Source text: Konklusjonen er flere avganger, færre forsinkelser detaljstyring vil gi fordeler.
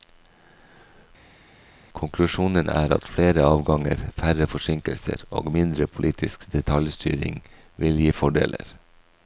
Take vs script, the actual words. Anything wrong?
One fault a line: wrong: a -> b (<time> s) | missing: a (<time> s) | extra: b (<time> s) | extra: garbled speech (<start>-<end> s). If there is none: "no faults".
extra: at (3.0 s)
extra: og mindre politisk (5.3 s)